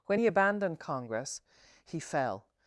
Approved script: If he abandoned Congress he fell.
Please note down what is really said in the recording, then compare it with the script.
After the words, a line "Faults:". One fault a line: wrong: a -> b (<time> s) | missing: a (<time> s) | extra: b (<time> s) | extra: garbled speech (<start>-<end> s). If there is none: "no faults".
When he abandoned Congress he fell.
Faults:
wrong: If -> When (0.1 s)